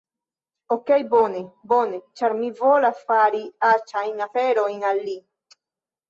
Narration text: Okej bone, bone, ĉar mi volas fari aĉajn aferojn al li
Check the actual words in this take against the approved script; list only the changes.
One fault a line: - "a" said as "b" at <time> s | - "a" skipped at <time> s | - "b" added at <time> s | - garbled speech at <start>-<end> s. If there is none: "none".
none